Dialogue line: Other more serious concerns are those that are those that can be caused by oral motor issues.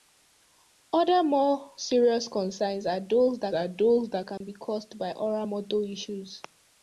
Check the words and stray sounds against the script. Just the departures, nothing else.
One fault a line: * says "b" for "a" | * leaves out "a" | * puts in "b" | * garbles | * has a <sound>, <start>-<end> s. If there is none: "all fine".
* has a dropout, 4.4-4.4 s